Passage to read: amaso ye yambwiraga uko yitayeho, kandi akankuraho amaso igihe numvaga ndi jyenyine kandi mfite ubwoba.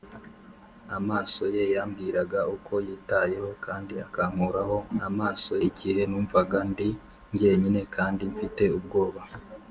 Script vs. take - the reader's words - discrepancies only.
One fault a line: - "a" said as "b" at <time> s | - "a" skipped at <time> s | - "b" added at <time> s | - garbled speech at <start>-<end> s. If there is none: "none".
none